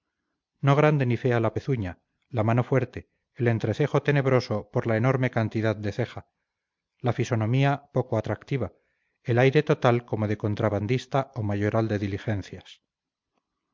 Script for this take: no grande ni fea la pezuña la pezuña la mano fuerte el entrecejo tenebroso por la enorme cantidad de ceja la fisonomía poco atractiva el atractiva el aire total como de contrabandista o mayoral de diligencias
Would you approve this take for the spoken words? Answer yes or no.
no